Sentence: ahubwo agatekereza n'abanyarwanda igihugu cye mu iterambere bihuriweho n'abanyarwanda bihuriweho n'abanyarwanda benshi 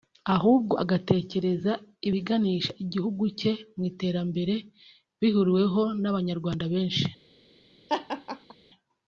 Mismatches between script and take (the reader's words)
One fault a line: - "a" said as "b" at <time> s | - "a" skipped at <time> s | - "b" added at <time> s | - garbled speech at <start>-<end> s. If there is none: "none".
- "n'abanyarwanda" said as "ibiganisha" at 2.1 s
- "bihuriweho n'abanyarwanda" skipped at 6.6 s